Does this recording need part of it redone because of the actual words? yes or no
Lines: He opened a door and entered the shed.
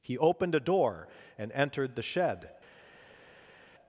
no